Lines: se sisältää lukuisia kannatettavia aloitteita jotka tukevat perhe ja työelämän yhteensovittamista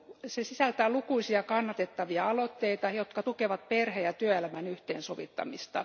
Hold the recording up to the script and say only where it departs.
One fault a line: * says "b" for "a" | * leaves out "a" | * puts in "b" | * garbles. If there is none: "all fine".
all fine